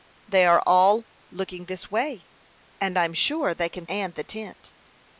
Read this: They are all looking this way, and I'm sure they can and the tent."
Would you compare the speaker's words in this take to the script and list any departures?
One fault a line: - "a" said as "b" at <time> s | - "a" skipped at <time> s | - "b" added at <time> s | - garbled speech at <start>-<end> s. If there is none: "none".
none